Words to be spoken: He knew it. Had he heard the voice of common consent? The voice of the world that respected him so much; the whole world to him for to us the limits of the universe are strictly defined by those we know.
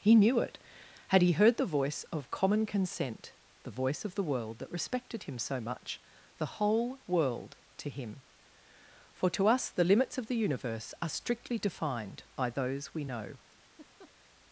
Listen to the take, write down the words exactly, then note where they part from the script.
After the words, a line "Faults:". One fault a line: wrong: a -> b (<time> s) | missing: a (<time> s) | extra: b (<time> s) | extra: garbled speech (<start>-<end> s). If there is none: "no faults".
He knew it. Had he heard the voice of common consent? The voice of the world that respected him so much; the whole world to him for to us the limits of the universe are strictly defined by those we know.
Faults:
no faults